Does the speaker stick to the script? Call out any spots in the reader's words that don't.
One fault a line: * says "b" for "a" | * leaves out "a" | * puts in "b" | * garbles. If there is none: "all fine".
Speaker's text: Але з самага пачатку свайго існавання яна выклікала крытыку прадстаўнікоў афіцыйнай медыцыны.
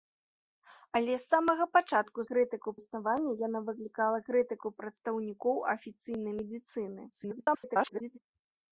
* says "крытыку" for "свайго"
* garbles